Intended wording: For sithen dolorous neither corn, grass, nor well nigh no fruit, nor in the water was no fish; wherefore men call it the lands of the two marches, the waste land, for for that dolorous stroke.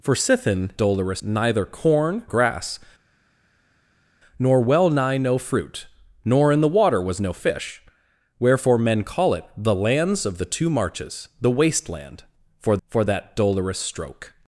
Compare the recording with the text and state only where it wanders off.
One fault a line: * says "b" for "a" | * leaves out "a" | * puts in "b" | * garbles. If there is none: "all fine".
all fine